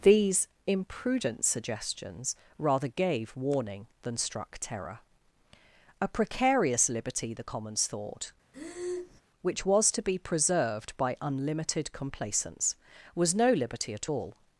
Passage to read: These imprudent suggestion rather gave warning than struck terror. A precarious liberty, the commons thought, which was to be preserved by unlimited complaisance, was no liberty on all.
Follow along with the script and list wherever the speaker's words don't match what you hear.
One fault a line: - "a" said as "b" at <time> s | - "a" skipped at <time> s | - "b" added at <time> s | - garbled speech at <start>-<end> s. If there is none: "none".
- "suggestion" said as "suggestions" at 1.4 s
- "on" said as "at" at 14.0 s